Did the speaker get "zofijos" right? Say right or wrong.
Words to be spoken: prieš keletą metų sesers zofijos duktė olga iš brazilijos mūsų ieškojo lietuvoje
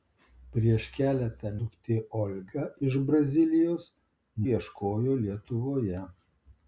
wrong